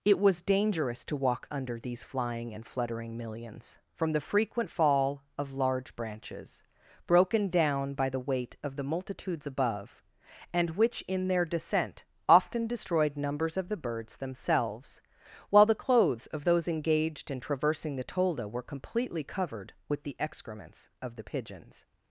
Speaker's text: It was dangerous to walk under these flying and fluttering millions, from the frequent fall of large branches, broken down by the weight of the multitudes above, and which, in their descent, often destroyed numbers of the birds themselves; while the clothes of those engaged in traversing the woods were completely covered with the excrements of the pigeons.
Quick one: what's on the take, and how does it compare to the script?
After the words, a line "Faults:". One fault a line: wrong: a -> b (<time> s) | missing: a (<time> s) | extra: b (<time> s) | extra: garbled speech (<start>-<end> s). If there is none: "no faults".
It was dangerous to walk under these flying and fluttering millions, from the frequent fall of large branches, broken down by the weight of the multitudes above, and which, in their descent, often destroyed numbers of the birds themselves; while the clothes of those engaged in traversing the tolda were completely covered with the excrements of the pigeons.
Faults:
wrong: woods -> tolda (18.0 s)